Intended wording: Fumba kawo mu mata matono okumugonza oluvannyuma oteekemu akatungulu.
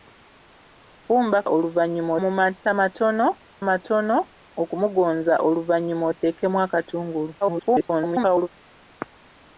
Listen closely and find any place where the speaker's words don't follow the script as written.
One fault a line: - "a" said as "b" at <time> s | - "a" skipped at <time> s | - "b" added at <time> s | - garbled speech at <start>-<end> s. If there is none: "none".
- "kawo" said as "oluvannyuma" at 1.5 s
- "matono" added at 3.7 s
- garbled speech at 7.4-8.5 s